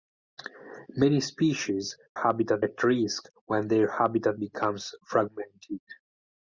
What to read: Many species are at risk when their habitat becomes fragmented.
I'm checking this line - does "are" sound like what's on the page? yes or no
no